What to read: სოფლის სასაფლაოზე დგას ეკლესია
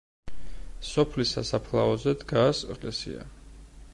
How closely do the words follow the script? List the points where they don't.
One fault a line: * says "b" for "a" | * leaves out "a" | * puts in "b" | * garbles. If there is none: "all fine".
all fine